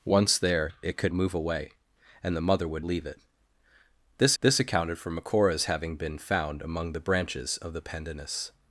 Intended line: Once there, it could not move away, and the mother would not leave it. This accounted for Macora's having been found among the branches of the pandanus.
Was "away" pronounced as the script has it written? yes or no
yes